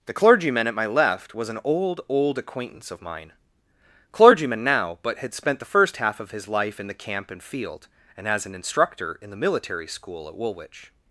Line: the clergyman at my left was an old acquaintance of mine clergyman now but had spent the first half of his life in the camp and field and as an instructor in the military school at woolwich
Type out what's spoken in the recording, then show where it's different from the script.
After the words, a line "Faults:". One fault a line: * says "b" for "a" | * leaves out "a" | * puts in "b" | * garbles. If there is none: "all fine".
the clergyman at my left was an old old acquaintance of mine clergyman now but had spent the first half of his life in the camp and field and as an instructor in the military school at woolwich
Faults:
* puts in "old"